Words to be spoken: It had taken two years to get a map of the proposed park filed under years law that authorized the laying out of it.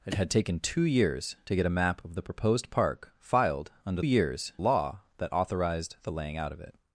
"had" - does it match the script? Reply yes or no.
yes